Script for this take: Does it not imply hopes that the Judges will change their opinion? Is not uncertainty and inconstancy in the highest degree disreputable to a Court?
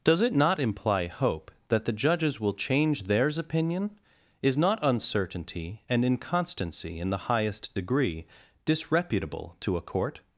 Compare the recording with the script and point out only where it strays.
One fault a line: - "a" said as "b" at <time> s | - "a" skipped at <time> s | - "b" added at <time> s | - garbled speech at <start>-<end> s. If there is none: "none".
- "hopes" said as "hope" at 1.1 s
- "their" said as "theirs" at 3.0 s